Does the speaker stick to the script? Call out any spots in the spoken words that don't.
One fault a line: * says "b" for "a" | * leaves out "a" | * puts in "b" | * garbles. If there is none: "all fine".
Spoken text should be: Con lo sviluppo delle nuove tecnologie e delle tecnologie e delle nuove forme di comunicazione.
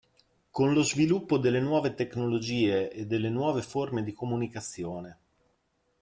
* leaves out "tecnologie e delle"